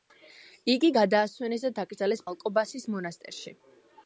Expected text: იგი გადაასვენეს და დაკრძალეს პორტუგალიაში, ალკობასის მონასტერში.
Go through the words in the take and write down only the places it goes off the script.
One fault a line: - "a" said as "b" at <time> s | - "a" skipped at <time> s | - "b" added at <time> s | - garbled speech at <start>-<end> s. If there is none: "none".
- "პორტუგალიაში" skipped at 2.2 s